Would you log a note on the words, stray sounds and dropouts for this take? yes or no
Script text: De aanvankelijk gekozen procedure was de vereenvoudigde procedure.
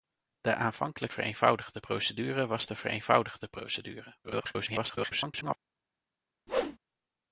yes